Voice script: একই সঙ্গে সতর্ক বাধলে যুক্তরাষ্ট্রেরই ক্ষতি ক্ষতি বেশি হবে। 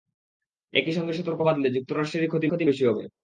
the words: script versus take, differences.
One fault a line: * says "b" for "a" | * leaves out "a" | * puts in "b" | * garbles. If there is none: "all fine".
all fine